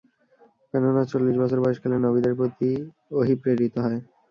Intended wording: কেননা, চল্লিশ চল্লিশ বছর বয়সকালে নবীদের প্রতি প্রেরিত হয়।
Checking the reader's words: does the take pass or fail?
fail